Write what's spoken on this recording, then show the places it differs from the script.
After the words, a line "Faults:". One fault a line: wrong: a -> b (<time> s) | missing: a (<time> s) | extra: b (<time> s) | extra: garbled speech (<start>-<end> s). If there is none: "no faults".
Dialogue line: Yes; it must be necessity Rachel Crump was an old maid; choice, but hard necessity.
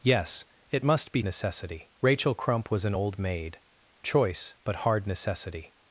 Yes; it must be necessity Rachel Crump was an old maid; choice, but hard necessity.
Faults:
no faults